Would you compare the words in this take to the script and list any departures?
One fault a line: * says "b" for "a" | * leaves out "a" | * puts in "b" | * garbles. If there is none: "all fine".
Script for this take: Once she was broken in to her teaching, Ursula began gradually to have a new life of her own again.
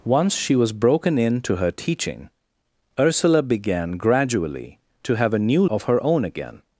* leaves out "life"